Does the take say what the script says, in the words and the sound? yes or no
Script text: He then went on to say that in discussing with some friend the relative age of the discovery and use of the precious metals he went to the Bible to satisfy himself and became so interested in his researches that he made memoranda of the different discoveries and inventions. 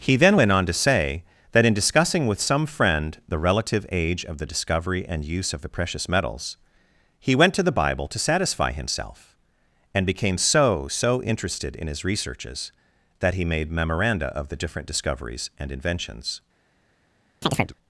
no